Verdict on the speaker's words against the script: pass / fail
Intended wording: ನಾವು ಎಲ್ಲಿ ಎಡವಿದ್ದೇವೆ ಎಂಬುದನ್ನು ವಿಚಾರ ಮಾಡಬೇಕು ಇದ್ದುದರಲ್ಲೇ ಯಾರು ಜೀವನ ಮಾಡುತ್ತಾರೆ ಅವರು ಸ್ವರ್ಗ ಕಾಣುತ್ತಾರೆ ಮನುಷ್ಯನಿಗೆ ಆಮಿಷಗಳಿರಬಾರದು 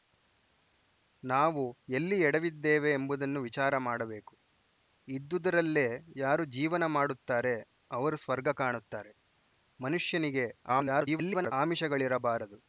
fail